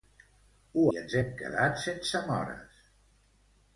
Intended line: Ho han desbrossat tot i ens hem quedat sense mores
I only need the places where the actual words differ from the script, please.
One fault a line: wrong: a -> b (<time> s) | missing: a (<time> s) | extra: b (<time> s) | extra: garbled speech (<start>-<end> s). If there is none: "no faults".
missing: han desbrossat tot (0.8 s)